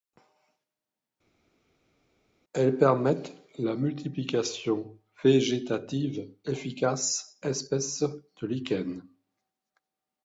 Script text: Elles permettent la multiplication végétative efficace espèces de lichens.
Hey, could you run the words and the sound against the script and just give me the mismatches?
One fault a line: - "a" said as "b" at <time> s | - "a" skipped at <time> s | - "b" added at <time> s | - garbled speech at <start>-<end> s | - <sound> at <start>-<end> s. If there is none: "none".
none